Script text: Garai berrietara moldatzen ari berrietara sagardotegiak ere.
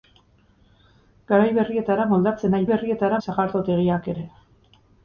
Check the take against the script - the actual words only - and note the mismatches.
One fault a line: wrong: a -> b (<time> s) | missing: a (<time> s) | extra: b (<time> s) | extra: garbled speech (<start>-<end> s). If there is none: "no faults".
no faults